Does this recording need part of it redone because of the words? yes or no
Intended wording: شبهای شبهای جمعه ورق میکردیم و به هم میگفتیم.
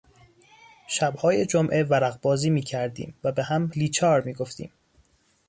yes